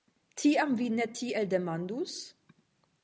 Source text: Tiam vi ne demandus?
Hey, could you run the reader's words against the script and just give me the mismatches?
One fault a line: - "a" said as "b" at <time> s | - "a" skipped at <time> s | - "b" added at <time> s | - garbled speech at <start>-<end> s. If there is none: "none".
- "tiel" added at 1.2 s